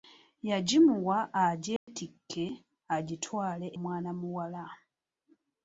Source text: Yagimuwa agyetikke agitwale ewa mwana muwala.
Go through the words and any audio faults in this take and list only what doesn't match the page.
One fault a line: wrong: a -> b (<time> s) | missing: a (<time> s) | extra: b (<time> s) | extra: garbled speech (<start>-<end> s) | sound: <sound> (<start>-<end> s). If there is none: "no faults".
sound: dropout (1.8-1.9 s)
missing: ewa (3.7 s)